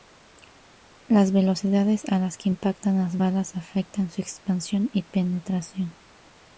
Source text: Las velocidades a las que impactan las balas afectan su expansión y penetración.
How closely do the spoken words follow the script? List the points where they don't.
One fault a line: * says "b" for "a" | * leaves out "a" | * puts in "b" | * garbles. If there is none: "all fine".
all fine